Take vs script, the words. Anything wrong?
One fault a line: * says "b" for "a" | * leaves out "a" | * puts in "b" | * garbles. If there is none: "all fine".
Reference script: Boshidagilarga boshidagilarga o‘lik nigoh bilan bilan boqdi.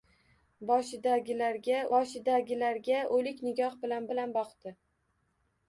all fine